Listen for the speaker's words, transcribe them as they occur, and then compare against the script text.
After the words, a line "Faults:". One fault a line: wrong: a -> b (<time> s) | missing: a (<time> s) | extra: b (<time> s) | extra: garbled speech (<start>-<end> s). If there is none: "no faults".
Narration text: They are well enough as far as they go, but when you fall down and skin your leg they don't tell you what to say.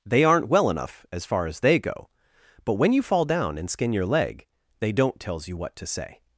They aren't well enough as far as they go, but when you fall down and skin your leg they don't tells you what to say.
Faults:
wrong: are -> aren't (0.2 s)
wrong: tell -> tells (5.2 s)